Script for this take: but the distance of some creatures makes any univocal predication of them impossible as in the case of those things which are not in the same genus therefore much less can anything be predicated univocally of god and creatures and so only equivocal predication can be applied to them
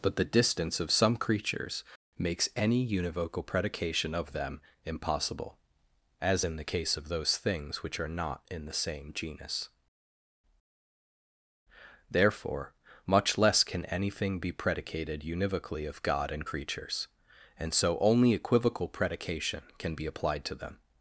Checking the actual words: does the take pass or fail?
pass